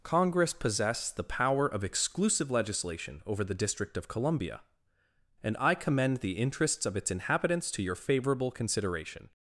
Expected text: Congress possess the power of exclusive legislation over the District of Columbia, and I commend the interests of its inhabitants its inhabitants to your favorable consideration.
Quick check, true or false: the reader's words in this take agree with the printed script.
false